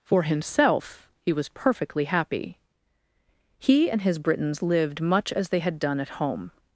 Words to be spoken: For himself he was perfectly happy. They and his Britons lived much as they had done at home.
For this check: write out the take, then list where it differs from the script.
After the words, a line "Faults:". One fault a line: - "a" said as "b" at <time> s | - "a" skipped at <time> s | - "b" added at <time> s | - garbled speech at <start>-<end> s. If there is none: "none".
For himself he was perfectly happy. He and his Britons lived much as they had done at home.
Faults:
- "They" said as "He" at 3.6 s